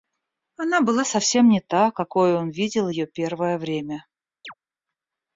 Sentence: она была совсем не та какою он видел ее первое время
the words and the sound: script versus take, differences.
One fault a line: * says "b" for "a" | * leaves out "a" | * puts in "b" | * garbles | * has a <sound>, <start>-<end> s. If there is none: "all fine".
* has a chirp, 4.4-4.5 s